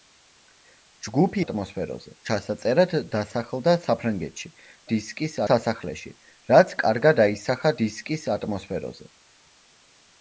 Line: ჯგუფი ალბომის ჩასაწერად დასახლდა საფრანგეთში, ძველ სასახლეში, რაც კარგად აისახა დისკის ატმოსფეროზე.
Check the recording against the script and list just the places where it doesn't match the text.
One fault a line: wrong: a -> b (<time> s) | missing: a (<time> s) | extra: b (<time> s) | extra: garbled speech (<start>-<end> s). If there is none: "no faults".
wrong: ალბომის -> ატმოსფეროზე (1.4 s)
wrong: ძველ -> დისკის (4.9 s)